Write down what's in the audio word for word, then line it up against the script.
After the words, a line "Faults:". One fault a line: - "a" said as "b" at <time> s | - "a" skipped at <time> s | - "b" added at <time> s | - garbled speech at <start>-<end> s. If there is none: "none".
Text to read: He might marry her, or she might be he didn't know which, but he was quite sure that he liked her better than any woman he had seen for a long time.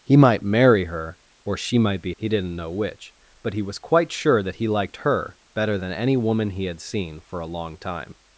He might marry her, or she might be he didn't know which, but he was quite sure that he liked her better than any woman he had seen for a long time.
Faults:
none